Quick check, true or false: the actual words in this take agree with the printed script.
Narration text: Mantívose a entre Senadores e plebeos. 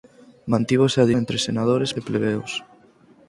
true